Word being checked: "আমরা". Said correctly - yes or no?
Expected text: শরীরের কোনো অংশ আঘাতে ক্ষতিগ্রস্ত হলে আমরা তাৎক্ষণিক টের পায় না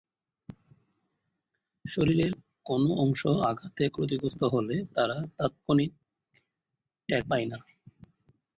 no